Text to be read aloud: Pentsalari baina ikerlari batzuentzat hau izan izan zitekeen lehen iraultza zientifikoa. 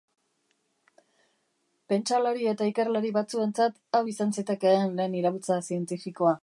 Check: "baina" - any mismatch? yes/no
yes